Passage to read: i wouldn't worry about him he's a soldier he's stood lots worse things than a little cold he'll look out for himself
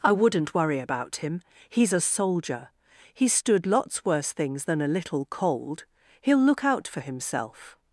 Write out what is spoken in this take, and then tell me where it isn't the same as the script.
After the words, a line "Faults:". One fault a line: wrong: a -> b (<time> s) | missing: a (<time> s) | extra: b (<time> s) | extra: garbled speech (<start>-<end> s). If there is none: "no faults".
i wouldn't worry about him he's a soldier he's stood lots worse things than a little cold he'll look out for himself
Faults:
no faults